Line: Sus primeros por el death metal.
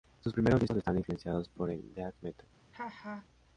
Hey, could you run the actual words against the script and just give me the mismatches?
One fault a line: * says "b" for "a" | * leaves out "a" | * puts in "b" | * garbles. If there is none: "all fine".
* puts in "discos están influenciados"